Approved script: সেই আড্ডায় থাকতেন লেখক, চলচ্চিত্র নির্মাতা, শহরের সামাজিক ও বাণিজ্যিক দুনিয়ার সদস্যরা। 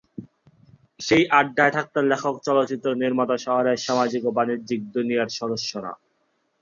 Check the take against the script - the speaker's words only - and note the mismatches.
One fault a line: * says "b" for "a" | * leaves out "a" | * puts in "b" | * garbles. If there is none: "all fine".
all fine